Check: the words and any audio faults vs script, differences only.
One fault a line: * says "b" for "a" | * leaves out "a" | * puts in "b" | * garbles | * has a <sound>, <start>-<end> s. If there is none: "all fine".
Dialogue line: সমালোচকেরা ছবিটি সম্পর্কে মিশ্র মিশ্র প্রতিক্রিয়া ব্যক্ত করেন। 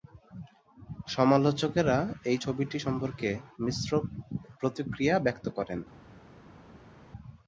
* puts in "এই"
* leaves out "মিশ্র"